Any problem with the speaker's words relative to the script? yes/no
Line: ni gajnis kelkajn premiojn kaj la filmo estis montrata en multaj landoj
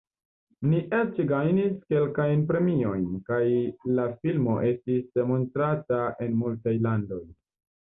yes